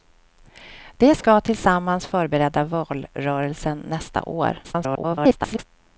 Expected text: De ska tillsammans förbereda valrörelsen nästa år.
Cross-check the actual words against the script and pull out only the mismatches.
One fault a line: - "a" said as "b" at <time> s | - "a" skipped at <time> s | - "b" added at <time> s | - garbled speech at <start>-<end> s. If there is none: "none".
- garbled speech at 4.6-5.6 s